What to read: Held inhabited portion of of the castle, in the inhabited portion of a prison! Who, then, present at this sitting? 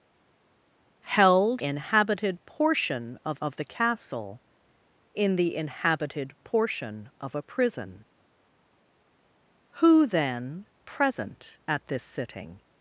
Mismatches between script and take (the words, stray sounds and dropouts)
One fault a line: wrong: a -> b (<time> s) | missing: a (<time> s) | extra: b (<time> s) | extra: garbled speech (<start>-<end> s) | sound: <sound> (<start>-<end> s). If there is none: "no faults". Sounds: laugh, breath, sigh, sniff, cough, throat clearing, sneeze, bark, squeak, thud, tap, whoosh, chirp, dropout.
no faults